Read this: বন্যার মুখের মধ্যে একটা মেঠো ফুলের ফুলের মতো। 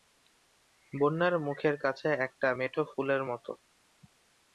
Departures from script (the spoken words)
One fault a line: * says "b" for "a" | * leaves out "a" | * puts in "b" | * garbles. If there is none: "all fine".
* says "কাছে" for "মধ্যে"
* leaves out "ফুলের"